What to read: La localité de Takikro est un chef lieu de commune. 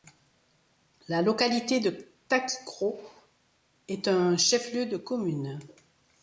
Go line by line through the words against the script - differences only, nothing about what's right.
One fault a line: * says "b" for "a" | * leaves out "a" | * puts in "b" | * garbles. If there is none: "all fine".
all fine